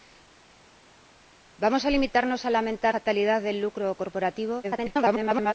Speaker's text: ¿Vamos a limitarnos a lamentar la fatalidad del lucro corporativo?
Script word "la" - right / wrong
wrong